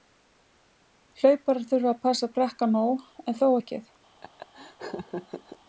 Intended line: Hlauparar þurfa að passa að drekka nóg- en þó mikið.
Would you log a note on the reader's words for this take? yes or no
no